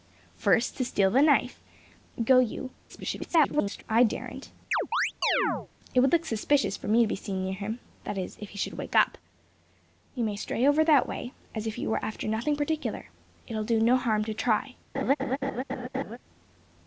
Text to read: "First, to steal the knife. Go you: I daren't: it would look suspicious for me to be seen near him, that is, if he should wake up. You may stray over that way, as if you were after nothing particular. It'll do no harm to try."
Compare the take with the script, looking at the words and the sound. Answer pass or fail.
fail